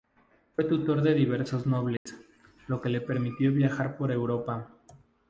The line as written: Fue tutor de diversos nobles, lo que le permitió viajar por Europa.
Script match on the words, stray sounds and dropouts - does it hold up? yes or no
no